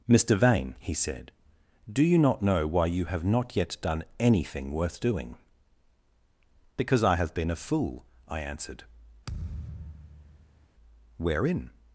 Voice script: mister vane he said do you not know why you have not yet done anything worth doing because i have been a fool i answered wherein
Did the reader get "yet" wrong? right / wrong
right